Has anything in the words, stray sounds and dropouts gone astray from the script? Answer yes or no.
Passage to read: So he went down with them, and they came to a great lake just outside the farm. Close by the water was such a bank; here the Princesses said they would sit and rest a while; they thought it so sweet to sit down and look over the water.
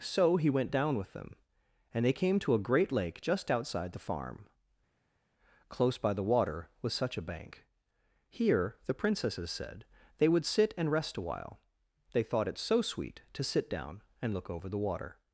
no